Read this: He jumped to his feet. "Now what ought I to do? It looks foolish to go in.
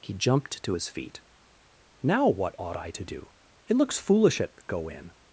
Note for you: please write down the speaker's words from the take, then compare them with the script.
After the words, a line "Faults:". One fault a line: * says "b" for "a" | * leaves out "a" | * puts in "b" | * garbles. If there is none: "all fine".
He jumped to his feet. "Now what ought I to do? It looks foolish at go in.
Faults:
* says "at" for "to"